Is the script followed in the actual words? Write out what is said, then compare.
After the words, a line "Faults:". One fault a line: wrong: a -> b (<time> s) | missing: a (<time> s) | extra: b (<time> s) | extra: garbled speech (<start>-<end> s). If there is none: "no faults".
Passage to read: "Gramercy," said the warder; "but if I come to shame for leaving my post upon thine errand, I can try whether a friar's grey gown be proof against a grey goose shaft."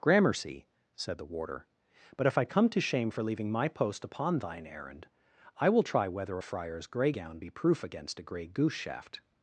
"Gramercy," said the warder; "but if I come to shame for leaving my post upon thine errand, I will try whether a friar's grey gown be proof against a grey goose shaft."
Faults:
wrong: can -> will (5.7 s)